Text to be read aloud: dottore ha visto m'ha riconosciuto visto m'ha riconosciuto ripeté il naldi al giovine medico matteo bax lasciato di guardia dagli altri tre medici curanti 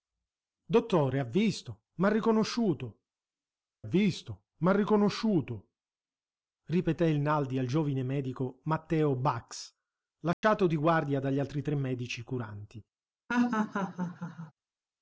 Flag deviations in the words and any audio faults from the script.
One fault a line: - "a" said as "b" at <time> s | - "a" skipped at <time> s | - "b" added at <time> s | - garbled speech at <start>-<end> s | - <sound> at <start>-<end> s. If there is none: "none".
- dropout at 10.3-10.4 s
- laugh at 13.3-14.5 s